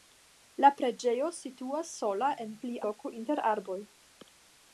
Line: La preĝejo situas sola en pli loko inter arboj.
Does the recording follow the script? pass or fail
pass